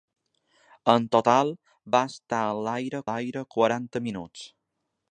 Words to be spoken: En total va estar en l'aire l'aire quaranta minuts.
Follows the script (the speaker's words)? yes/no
yes